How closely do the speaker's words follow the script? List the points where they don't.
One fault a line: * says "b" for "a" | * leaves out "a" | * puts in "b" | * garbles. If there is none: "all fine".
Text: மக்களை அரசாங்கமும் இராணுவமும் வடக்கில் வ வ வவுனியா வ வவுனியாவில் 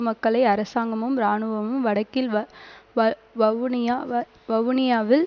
all fine